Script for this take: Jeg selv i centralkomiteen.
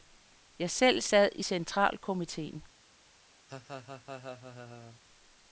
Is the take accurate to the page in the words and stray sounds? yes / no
no